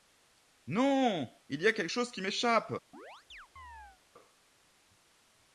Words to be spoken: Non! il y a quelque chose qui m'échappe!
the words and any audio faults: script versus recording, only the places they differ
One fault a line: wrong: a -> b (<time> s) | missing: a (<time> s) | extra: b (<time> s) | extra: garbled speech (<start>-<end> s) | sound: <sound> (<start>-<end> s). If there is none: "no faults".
sound: chirp (2.9-4.0 s)